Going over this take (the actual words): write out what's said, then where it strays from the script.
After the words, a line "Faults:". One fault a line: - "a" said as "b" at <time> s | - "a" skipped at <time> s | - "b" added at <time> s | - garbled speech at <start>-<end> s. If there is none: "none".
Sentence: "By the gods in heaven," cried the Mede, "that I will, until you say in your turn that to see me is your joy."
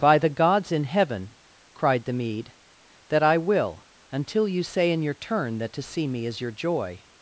"By the gods in heaven," cried the Mede, "that I will, until you say in your turn that to see me is your joy."
Faults:
none